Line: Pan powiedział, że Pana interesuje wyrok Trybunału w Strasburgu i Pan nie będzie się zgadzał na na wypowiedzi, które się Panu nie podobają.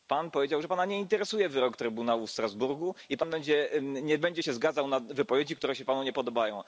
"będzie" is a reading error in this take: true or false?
false